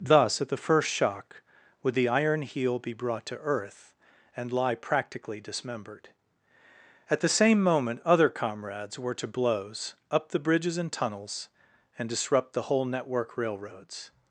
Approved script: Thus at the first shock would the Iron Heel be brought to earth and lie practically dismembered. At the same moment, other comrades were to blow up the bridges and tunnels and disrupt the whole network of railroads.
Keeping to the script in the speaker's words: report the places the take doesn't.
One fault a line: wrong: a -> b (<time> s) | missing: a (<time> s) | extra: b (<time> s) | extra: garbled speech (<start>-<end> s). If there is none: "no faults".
wrong: blow -> blows (9.3 s)
missing: of (13.4 s)